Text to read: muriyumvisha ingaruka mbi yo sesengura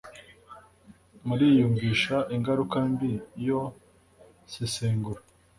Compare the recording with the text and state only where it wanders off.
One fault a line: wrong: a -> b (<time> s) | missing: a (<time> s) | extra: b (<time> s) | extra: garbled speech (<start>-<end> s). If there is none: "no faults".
no faults